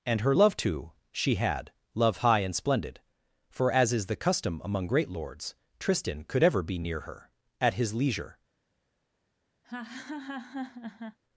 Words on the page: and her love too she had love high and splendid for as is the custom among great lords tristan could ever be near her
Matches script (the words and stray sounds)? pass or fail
fail